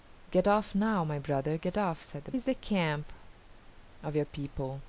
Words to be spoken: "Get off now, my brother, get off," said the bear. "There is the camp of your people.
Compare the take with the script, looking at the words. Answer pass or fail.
fail